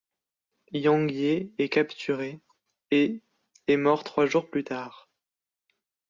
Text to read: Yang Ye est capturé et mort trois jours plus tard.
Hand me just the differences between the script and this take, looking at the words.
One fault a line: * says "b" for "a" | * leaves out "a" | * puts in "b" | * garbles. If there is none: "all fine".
* puts in "est"